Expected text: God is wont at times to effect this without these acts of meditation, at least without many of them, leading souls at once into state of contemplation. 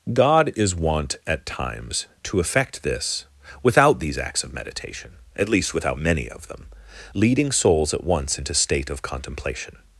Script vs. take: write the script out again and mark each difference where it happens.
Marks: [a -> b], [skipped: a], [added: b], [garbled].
God is wont at times to effect this without these acts of meditation, at least without many of them, leading souls at once into state of contemplation.